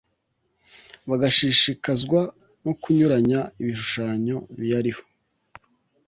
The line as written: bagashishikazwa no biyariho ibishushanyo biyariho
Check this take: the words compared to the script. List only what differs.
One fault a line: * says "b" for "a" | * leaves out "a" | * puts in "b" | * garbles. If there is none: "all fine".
* says "kunyuranya" for "biyariho"